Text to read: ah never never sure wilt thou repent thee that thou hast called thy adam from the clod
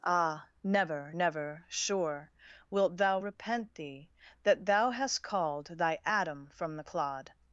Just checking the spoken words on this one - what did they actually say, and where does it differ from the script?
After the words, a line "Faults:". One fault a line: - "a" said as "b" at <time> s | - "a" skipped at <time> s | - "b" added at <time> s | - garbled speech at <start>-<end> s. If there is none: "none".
ah never never sure wilt thou repent thee that thou hast called thy adam from the clod
Faults:
none